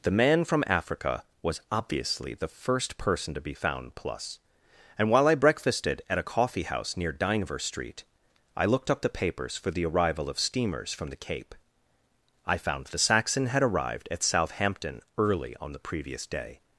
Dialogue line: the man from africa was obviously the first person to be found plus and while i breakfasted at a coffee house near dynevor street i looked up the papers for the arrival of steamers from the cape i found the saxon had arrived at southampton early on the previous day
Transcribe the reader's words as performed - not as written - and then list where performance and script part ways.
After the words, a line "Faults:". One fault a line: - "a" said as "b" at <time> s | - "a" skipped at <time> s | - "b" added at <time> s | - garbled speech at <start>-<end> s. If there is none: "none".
the man from africa was obviously the first person to be found plus and while i breakfasted at a coffee house near dynevor street i looked up the papers for the arrival of steamers from the cape i found the saxon had arrived at southampton early on the previous day
Faults:
none